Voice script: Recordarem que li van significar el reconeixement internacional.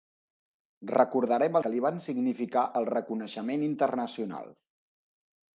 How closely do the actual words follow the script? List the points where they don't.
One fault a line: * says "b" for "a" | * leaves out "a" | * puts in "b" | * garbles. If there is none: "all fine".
all fine